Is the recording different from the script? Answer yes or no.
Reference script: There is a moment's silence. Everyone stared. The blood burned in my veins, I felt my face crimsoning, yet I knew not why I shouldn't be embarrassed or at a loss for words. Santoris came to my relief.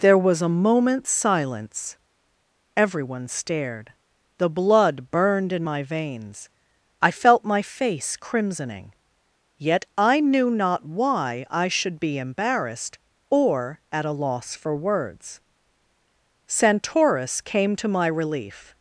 yes